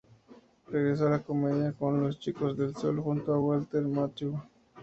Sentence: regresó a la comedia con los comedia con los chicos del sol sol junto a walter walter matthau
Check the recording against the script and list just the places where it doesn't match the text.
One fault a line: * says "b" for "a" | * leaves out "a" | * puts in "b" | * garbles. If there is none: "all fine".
* leaves out "comedia con los"
* leaves out "sol"
* leaves out "walter"